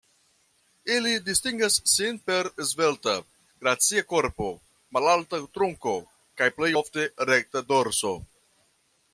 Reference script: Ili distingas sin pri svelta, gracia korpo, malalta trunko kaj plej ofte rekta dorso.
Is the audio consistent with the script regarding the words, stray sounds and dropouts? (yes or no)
no